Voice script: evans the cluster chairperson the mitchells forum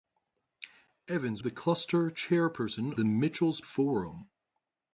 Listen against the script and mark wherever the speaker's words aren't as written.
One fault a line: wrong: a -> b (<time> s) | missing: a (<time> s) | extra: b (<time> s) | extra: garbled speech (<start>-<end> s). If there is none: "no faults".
no faults